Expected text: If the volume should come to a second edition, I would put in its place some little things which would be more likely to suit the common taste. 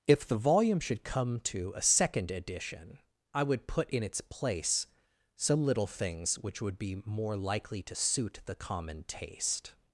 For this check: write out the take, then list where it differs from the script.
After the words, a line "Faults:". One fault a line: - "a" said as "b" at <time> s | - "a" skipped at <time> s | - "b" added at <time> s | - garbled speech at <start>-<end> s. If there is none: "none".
If the volume should come to a second edition, I would put in its place some little things which would be more likely to suit the common taste.
Faults:
none